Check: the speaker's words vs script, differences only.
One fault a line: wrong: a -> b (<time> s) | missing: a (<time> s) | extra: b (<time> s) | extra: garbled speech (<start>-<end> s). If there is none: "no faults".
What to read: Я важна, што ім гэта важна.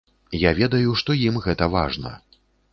wrong: важна -> ведаю (0.6 s)